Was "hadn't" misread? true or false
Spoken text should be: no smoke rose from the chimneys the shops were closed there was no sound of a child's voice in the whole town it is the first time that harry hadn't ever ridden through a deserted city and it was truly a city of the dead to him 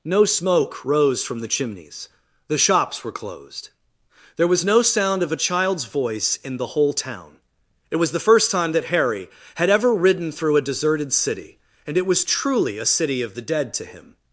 true